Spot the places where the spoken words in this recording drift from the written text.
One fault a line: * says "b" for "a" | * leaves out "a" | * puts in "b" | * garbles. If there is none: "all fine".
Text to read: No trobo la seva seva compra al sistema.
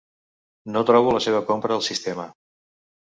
* leaves out "seva"